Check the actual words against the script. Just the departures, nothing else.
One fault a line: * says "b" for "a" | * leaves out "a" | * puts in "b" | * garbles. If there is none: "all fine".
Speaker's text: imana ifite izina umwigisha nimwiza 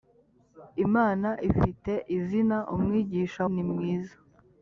all fine